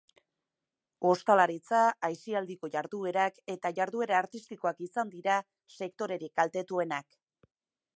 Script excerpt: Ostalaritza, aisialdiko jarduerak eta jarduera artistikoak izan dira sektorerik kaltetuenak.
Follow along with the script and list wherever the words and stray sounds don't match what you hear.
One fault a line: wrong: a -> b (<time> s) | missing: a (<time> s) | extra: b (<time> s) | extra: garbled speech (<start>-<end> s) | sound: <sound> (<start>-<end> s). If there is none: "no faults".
no faults